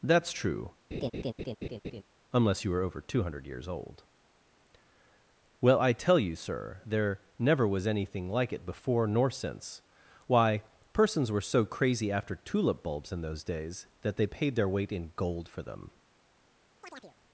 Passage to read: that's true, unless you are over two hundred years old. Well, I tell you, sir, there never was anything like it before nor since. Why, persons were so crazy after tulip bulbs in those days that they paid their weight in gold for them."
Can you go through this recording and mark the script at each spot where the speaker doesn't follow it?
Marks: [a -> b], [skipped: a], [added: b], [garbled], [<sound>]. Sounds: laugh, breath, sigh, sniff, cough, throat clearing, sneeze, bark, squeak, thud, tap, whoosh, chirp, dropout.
that's true, [laugh] unless you [are -> were] over two hundred years old. Well, I tell you, sir, there never was anything like it before nor since. Why, persons were so crazy after tulip bulbs in those days that they paid their weight in gold for them." [chirp]